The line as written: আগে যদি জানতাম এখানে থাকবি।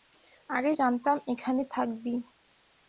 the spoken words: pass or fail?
fail